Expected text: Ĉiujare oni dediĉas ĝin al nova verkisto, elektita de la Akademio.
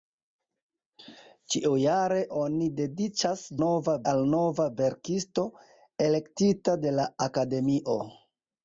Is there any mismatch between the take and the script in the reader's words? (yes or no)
yes